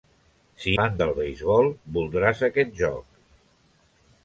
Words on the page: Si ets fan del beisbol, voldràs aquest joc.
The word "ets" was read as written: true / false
false